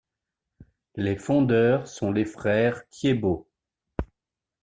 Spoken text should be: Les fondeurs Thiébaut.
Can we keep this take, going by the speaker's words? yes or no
no